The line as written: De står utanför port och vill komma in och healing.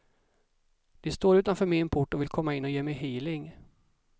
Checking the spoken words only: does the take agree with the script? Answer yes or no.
no